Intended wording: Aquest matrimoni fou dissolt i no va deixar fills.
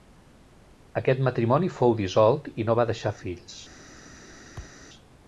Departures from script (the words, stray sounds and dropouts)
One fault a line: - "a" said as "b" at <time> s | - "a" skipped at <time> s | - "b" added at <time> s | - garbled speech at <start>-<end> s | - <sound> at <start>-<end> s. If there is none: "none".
- thud at 4.6-4.9 s